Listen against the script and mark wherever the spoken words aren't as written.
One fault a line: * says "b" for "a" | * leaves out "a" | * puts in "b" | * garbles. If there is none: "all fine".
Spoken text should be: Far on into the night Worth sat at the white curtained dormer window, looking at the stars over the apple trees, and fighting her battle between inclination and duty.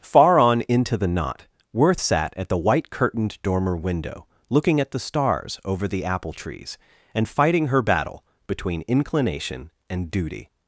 * says "knot" for "night"